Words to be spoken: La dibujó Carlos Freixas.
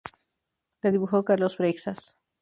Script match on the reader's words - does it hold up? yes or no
yes